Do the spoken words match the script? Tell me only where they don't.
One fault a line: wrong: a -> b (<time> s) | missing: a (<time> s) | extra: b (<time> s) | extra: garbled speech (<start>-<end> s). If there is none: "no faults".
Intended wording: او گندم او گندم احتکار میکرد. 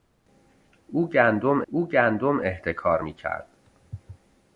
no faults